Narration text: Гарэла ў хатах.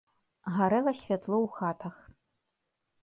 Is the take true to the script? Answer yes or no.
no